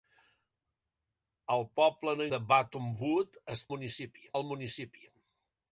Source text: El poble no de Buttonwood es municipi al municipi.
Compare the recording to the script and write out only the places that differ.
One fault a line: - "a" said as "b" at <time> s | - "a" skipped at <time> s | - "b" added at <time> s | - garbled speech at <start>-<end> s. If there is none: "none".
none